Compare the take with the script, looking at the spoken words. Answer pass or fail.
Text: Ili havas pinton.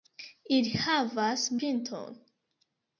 pass